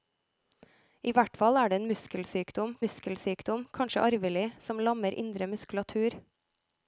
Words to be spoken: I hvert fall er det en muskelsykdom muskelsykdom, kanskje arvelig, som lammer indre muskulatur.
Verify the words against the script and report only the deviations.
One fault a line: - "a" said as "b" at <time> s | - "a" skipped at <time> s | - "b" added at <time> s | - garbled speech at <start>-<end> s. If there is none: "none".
none